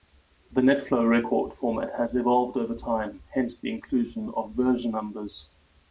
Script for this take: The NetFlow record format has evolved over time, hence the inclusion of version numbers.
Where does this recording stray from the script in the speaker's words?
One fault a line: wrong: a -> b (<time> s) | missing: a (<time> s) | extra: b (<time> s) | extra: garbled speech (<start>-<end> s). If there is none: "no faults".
no faults